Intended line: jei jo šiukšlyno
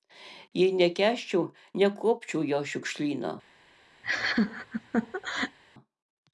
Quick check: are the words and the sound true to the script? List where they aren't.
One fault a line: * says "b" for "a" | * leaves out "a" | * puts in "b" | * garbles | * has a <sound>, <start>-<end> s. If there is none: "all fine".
* puts in "nekęsčiau nekuopčiau"
* has a laugh, 4.0-5.6 s